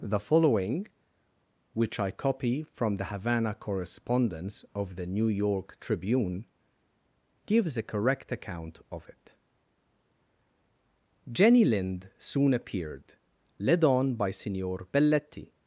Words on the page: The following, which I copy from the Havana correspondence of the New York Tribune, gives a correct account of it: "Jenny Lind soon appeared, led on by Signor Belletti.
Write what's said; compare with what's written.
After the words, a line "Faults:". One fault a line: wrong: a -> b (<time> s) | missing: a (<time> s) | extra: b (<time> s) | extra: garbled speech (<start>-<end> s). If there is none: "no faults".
The following, which I copy from the Havana correspondence of the New York Tribune, gives a correct account of it: "Jenny Lind soon appeared, led on by Signor Belletti.
Faults:
no faults